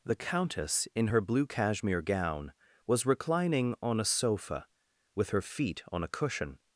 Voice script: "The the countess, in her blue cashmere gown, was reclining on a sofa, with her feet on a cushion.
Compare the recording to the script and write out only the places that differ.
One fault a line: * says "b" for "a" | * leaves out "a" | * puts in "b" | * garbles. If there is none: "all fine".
* leaves out "the"